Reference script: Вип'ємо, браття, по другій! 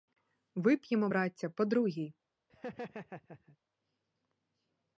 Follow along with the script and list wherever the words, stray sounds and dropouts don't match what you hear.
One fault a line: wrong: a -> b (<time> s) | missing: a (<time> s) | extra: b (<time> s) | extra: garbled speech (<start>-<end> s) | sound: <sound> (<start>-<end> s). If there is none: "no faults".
sound: laugh (2.5-3.6 s)